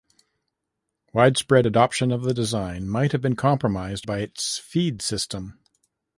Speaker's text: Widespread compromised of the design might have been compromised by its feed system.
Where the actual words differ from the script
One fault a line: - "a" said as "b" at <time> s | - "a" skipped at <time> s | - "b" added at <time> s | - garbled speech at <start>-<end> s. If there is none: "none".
- "compromised" said as "adoption" at 1.7 s